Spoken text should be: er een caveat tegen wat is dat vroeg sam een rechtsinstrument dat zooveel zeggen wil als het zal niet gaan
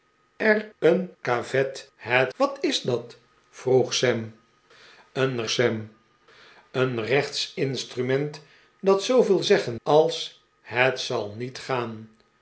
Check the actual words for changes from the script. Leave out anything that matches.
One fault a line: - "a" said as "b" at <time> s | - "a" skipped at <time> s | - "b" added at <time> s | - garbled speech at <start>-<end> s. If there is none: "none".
- "tegen" said as "het" at 2.0 s
- "sam een" added at 5.5 s
- "wil" skipped at 9.8 s